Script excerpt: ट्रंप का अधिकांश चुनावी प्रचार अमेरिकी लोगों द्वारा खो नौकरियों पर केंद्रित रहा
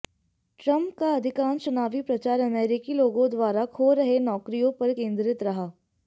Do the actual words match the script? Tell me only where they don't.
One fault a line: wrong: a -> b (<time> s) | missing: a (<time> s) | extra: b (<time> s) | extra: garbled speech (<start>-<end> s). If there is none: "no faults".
extra: रहे (4.0 s)